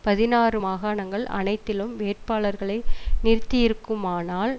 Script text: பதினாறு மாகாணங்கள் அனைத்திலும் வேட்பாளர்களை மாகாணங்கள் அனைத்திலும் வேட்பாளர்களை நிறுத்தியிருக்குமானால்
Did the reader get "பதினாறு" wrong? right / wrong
right